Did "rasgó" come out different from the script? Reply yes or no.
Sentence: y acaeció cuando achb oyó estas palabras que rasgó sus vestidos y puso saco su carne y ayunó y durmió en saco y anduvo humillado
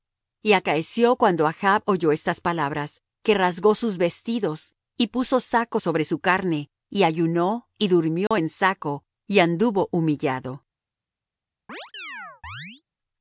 no